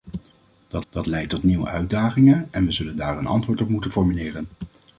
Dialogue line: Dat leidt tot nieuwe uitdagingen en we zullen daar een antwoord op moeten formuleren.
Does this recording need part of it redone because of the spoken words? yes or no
yes